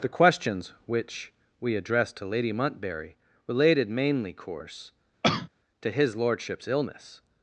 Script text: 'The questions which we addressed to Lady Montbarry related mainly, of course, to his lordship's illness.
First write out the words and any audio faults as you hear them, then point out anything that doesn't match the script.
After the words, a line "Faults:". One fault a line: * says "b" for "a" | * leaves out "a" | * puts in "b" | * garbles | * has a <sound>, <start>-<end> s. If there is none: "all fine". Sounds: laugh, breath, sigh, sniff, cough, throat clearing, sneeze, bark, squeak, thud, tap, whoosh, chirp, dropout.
'The questions which we addressed to Lady Montbarry related mainly, course, to his lordship's illness.
Faults:
* leaves out "of"
* has a cough, 5.2-5.5 s